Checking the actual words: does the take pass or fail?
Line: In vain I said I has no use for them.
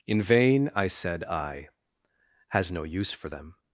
pass